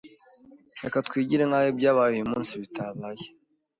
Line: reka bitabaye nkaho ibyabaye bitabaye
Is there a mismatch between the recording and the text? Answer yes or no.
yes